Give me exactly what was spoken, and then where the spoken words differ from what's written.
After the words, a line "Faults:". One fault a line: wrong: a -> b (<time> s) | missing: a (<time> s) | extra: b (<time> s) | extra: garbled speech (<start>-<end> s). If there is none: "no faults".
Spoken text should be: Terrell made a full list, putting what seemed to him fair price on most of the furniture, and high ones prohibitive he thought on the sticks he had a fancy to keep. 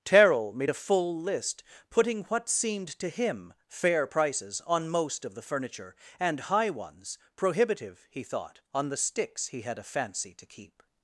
Terrell made a full list, putting what seemed to him fair prices on most of the furniture, and high ones prohibitive he thought on the sticks he had a fancy to keep.
Faults:
wrong: price -> prices (4.1 s)